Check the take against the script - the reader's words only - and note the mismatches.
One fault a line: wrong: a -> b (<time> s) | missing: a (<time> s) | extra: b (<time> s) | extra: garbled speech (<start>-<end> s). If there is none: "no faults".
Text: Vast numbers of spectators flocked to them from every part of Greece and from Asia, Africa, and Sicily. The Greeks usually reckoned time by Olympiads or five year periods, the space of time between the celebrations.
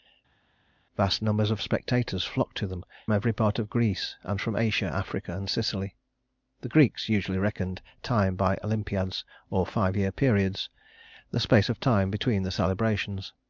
missing: from (2.9 s)